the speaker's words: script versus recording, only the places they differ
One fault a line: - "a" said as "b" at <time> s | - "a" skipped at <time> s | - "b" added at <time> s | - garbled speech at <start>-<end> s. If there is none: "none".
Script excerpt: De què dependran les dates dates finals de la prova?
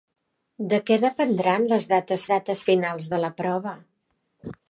none